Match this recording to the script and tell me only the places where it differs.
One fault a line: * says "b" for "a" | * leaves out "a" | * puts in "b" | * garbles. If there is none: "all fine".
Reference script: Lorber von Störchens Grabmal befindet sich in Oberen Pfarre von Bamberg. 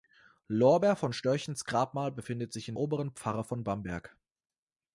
all fine